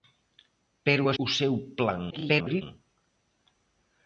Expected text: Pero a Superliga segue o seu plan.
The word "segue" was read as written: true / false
false